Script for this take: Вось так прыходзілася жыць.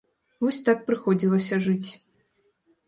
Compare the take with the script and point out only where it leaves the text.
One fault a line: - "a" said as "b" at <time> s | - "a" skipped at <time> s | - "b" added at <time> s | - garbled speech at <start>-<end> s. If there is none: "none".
none